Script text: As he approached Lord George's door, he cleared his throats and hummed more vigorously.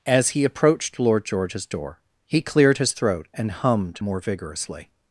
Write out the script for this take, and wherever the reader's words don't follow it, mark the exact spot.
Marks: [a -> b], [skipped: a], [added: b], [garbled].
As he approached Lord George's door, he cleared his [throats -> throat] and hummed more vigorously.